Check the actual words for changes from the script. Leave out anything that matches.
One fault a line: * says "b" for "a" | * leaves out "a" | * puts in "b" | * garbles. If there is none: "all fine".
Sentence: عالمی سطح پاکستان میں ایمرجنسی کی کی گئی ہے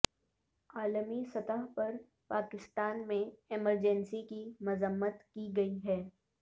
* puts in "پر"
* puts in "مذمت"